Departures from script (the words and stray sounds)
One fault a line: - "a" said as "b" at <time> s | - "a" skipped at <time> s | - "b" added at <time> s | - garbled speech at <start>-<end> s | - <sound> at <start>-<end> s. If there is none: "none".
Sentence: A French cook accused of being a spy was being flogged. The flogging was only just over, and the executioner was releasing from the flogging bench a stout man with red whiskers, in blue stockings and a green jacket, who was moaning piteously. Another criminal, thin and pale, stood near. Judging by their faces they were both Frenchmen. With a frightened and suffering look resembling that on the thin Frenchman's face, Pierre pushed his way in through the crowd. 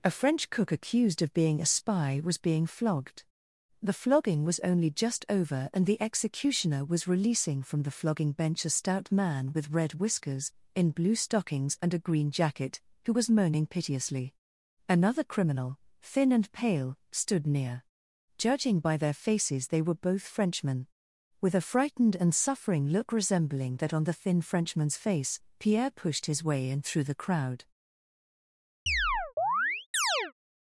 - chirp at 28.9-30.3 s